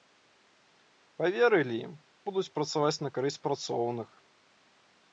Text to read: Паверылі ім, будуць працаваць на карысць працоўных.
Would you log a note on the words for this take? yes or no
no